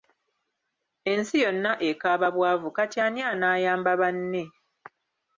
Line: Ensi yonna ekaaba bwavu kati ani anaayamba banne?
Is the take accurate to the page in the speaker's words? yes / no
yes